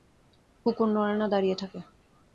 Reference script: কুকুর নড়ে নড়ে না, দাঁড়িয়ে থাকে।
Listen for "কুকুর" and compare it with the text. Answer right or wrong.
right